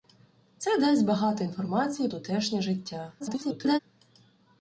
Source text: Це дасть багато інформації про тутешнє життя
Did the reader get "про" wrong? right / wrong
wrong